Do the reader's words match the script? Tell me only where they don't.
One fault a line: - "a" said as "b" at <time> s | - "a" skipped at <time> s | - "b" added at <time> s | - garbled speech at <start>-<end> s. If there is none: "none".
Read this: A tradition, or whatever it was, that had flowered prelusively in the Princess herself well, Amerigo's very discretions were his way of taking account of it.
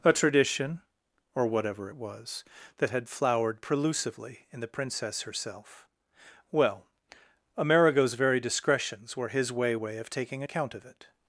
- "way" added at 9.7 s